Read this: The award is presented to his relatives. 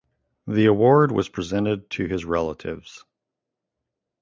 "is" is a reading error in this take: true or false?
true